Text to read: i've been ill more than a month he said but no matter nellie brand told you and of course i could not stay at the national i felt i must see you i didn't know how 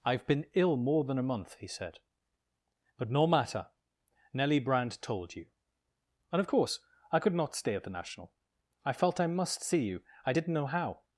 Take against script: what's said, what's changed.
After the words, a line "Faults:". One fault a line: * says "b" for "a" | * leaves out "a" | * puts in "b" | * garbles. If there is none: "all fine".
i've been ill more than a month he said but no matter nellie brand told you and of course i could not stay at the national i felt i must see you i didn't know how
Faults:
all fine